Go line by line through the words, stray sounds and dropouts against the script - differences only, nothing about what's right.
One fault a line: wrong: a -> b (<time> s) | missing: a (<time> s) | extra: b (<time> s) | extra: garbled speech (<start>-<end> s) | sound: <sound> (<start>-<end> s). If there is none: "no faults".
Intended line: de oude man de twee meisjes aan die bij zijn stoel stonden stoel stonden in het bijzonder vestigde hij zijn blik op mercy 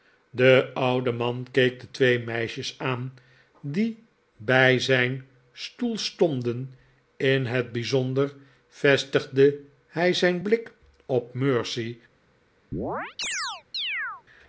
extra: keek (1.5 s)
missing: stoel stonden (6.7 s)
sound: chirp (12.7-14.2 s)